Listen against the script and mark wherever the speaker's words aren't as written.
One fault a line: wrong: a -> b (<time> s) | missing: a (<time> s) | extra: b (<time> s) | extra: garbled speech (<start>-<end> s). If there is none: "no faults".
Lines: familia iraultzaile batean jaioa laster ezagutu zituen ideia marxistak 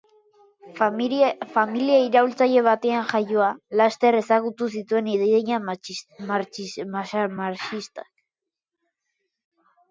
no faults